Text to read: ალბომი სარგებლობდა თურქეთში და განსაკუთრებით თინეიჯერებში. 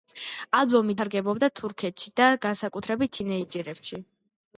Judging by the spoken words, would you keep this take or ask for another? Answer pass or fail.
pass